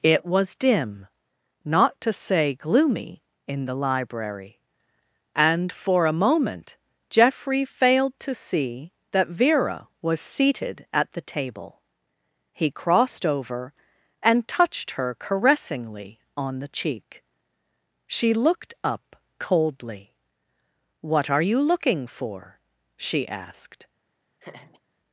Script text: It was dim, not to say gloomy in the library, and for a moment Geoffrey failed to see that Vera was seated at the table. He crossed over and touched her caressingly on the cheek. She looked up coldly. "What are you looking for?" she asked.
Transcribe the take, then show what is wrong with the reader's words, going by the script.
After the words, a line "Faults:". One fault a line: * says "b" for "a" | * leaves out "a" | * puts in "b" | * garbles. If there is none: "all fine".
It was dim, not to say gloomy in the library, and for a moment Geoffrey failed to see that Vera was seated at the table. He crossed over and touched her caressingly on the cheek. She looked up coldly. "What are you looking for?" she asked.
Faults:
all fine